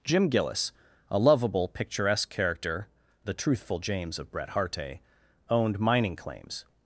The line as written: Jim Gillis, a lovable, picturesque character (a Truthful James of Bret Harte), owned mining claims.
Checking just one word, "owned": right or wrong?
right